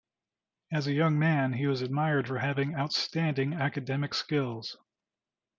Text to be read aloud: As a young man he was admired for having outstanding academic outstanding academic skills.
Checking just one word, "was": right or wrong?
right